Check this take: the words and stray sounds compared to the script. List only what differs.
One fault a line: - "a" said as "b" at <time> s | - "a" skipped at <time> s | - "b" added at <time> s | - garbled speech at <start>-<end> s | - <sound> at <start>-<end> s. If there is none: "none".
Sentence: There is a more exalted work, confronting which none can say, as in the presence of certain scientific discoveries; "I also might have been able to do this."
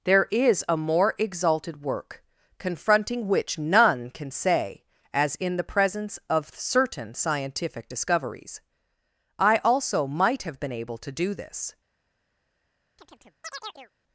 - chirp at 13.0-13.9 s